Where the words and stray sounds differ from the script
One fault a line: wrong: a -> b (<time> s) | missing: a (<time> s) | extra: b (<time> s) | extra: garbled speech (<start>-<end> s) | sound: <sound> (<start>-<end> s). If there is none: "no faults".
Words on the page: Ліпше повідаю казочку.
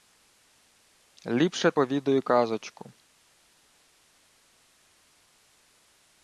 no faults